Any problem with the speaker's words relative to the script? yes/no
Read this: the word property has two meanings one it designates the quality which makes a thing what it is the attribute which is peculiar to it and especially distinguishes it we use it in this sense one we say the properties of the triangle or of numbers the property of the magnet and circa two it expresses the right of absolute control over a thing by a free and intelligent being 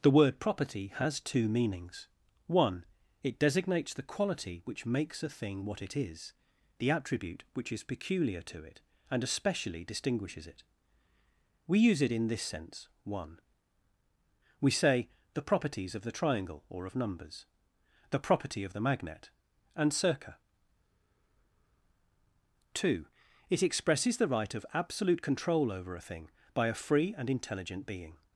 no